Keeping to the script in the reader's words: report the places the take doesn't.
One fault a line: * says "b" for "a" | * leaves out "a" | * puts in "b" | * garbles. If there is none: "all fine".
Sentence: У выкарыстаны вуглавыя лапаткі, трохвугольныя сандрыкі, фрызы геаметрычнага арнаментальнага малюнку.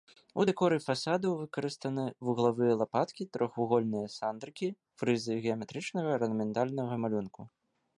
* puts in "дэкоры фасадаў"